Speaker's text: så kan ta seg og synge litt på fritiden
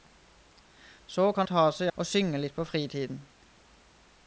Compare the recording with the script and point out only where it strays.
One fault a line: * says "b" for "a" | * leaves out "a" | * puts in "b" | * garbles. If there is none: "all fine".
all fine